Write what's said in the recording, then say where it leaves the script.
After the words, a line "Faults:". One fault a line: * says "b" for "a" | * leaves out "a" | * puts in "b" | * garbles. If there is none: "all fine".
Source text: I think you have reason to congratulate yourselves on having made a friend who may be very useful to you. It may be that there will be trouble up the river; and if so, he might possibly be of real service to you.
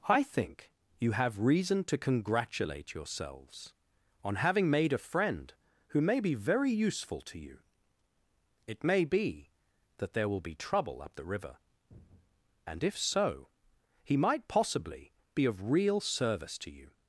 I think you have reason to congratulate yourselves on having made a friend who may be very useful to you. It may be that there will be trouble up the river; and if so, he might possibly be of real service to you.
Faults:
all fine